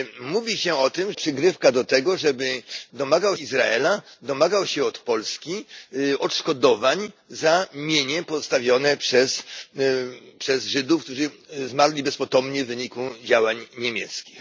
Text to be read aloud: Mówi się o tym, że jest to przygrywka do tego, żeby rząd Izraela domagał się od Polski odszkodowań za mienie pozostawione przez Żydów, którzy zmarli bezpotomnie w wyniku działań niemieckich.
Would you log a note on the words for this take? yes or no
yes